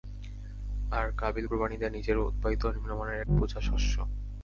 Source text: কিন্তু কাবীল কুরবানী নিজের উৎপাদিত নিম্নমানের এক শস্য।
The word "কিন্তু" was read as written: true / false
false